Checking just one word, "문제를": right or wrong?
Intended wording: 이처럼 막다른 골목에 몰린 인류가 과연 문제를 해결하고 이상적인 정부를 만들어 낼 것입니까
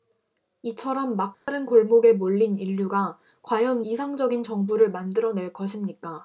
wrong